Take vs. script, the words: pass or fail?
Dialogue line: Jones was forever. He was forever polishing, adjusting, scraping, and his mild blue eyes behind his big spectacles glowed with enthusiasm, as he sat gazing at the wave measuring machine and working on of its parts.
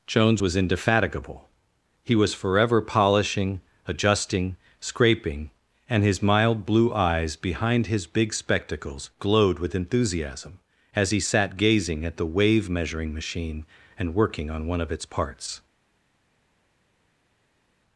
fail